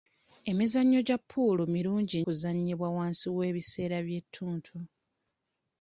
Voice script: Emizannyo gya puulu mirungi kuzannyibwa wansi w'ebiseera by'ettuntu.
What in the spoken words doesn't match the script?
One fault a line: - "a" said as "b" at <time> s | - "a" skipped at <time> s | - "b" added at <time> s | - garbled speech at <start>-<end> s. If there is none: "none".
none